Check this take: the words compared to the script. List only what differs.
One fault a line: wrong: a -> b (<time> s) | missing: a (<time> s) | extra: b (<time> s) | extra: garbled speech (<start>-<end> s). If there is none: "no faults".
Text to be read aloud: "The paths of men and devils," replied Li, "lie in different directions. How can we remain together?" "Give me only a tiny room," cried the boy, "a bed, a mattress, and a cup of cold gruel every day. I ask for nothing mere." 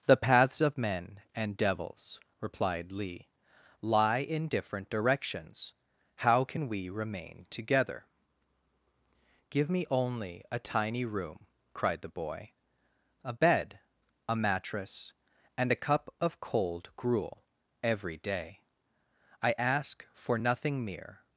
no faults